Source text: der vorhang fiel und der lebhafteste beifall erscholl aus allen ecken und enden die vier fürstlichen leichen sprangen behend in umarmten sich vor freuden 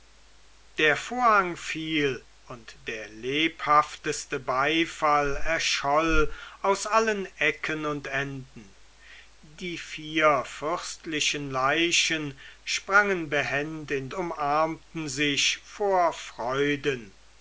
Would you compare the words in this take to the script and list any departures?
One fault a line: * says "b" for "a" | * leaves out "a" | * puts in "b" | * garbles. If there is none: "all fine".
all fine